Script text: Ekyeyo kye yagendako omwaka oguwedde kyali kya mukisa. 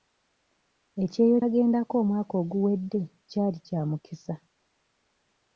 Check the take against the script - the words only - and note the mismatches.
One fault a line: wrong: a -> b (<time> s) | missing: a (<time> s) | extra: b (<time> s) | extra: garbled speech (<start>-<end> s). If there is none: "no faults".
missing: kye (1.4 s)